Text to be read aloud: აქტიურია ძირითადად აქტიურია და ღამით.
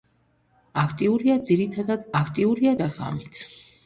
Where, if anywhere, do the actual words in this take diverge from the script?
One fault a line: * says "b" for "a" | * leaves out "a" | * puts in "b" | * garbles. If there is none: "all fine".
all fine